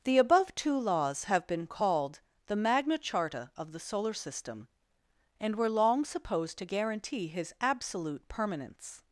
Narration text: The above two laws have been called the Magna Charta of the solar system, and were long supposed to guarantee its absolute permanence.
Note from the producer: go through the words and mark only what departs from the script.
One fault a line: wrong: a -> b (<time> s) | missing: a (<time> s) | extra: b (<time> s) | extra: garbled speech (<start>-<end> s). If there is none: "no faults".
wrong: its -> his (7.3 s)